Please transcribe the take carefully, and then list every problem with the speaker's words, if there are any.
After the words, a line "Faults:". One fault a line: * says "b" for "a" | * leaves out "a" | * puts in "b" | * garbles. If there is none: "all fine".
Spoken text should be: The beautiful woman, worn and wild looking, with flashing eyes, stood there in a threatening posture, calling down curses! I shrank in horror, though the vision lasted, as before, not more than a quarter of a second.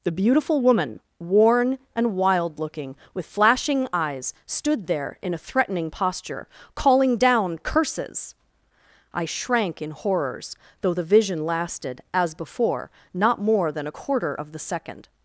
The beautiful woman, worn and wild looking, with flashing eyes, stood there in a threatening posture, calling down curses! I shrank in horrors, though the vision lasted, as before, not more than a quarter of the second.
Faults:
* says "horrors" for "horror"
* says "the" for "a"